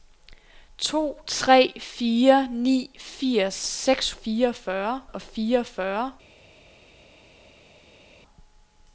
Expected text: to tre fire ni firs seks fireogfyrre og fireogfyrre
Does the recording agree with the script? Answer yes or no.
yes